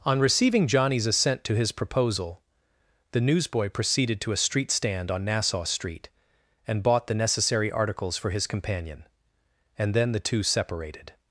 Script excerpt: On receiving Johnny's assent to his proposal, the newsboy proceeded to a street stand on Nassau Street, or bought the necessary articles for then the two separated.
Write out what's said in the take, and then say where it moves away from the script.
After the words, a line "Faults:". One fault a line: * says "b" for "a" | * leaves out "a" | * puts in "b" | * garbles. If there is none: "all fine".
On receiving Johnny's assent to his proposal, the newsboy proceeded to a street stand on Nassau Street, and bought the necessary articles for his companion, and then the two separated.
Faults:
* says "and" for "or"
* puts in "his companion and"